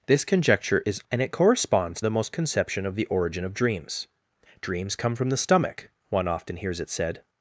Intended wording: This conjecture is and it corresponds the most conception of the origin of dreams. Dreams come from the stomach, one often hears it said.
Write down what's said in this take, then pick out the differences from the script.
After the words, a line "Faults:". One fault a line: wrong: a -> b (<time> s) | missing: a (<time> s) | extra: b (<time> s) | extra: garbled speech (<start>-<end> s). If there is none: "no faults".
This conjecture is and it corresponds the most conception of the origin of dreams. Dreams come from the stomach, one often hears it said.
Faults:
no faults